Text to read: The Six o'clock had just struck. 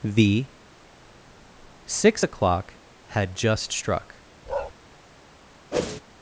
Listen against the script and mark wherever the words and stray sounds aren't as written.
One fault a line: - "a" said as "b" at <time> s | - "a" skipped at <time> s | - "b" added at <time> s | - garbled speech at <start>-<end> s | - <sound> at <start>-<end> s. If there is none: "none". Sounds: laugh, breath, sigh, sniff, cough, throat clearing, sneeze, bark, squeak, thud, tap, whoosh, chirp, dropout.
- bark at 4.5-4.7 s
- whoosh at 5.7-6.0 s